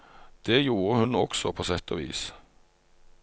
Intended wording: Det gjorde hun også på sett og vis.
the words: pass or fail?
pass